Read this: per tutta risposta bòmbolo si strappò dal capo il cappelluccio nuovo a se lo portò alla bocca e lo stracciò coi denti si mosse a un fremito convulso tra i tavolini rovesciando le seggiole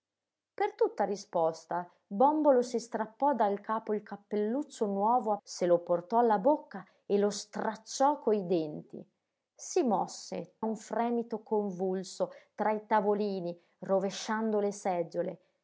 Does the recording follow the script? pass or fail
pass